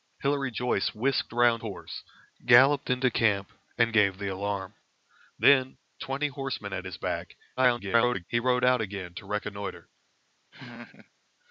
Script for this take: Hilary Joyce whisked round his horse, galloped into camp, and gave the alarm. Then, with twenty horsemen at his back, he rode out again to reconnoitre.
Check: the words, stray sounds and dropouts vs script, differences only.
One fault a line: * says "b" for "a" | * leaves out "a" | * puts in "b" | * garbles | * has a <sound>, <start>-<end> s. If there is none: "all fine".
* leaves out "his"
* leaves out "with"
* garbles
* has a laugh, 10.5-11.1 s